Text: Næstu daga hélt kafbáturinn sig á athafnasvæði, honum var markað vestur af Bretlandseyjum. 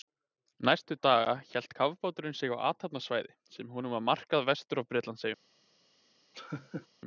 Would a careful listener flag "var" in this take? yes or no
no